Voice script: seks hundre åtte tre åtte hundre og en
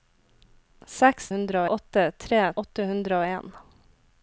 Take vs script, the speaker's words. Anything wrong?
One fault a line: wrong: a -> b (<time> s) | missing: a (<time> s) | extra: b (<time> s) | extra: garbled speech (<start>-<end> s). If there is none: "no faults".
no faults